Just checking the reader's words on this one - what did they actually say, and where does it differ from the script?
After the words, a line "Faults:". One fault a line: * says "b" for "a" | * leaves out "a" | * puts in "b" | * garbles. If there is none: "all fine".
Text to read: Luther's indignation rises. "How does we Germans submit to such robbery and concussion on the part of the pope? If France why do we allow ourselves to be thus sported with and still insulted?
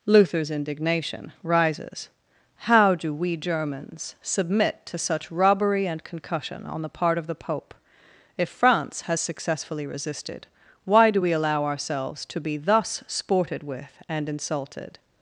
Luther's indignation rises. "How do we Germans submit to such robbery and concussion on the part of the pope? If France has successfully resisted, why do we allow ourselves to be thus sported with and insulted?
Faults:
* says "do" for "does"
* puts in "has successfully resisted"
* leaves out "still"